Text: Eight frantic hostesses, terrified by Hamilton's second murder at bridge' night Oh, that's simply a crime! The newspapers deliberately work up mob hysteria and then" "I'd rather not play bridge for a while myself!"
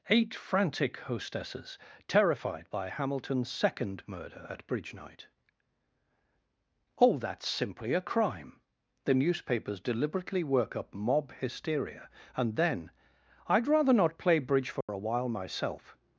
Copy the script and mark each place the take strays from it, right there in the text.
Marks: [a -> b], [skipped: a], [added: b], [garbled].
Eight frantic hostesses, terrified by Hamilton's second murder at bridge' night Oh, that's simply a crime! The newspapers deliberately work up mob hysteria and then" "I'd rather not play bridge for a while myself!"